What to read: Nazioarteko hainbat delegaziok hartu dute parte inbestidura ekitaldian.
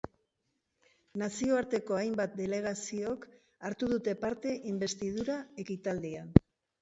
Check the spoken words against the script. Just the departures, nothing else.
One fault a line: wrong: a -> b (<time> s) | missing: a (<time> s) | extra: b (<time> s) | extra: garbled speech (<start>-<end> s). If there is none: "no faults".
no faults